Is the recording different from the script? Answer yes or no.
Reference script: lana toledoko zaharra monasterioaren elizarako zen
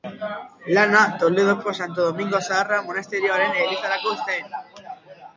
yes